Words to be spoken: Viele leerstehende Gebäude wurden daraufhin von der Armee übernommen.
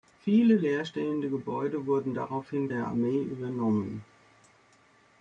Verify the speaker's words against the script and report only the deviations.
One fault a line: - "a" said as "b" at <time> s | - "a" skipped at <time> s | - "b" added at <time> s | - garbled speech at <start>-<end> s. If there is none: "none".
- "von" skipped at 2.7 s